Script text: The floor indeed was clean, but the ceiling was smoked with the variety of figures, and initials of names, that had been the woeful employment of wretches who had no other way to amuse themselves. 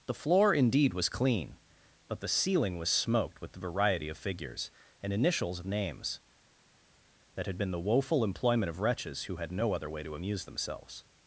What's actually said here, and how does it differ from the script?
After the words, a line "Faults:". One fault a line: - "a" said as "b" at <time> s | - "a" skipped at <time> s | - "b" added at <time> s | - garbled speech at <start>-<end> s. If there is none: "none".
The floor indeed was clean, but the ceiling was smoked with the variety of figures, and initials of names, that had been the woeful employment of wretches who had no other way to amuse themselves.
Faults:
none